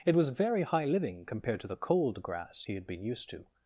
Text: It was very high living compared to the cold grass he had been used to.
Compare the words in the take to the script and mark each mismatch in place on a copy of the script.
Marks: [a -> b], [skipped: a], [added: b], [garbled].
It was very high living compared to the cold grass he had been used to.